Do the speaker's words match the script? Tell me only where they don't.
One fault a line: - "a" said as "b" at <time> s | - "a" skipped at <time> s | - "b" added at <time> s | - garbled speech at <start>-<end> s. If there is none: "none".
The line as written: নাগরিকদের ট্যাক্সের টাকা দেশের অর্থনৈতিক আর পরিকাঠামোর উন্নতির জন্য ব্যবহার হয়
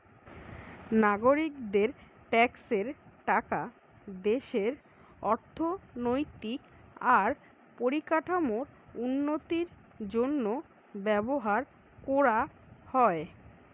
- "কোরা" added at 12.0 s